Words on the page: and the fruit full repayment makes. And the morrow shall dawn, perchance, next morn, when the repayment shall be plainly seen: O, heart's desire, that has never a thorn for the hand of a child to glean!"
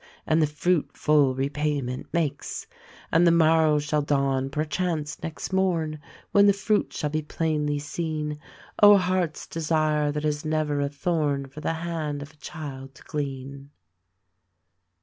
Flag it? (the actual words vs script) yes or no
yes